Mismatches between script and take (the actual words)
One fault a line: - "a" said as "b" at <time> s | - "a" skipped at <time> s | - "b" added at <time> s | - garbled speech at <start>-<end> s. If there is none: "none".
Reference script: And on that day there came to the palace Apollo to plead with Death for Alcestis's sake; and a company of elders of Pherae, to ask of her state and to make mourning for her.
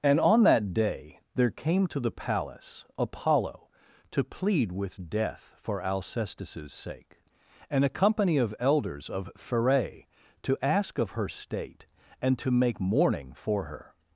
none